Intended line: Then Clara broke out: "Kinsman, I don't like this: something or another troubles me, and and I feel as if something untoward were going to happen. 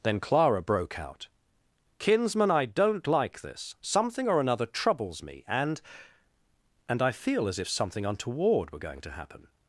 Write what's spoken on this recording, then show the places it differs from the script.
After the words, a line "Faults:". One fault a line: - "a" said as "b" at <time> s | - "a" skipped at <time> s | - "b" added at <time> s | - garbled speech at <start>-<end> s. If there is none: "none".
Then Clara broke out: "Kinsman, I don't like this: something or another troubles me, and and I feel as if something untoward were going to happen.
Faults:
none